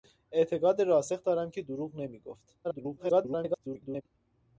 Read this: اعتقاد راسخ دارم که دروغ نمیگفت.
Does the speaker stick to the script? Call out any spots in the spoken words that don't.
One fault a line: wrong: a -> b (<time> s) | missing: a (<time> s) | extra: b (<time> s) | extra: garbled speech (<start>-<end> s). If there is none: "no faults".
extra: garbled speech (2.6-4.0 s)